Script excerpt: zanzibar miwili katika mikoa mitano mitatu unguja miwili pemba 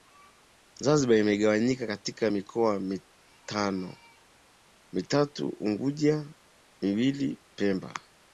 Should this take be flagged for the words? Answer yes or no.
yes